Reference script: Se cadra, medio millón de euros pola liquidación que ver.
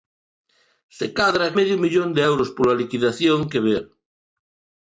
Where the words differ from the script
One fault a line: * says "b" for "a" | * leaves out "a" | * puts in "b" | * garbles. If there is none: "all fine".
all fine